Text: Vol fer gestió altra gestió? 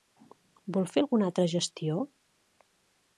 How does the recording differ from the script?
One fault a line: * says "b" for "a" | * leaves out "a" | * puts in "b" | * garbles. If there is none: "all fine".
* says "alguna" for "gestió"